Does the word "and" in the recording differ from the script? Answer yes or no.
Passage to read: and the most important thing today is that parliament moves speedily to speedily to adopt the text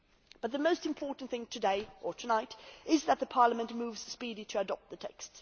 yes